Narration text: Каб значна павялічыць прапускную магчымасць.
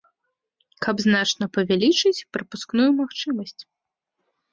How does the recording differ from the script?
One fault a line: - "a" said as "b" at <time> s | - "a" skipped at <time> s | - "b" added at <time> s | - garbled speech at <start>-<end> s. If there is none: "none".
none